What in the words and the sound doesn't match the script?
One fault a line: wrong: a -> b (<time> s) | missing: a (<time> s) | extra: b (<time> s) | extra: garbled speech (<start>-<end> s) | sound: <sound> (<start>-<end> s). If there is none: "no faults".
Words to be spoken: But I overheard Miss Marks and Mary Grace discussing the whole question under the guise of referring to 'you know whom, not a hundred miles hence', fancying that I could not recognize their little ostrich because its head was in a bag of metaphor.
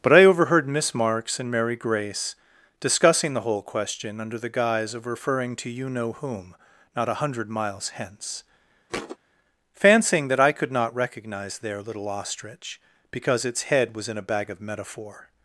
sound: thud (8.9-9.2 s)